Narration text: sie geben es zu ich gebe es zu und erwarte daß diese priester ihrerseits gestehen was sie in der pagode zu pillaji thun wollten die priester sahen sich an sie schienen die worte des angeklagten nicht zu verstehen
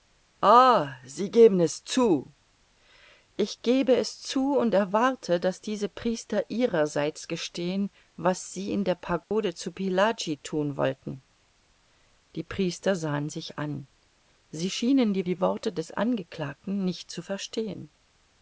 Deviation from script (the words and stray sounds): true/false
true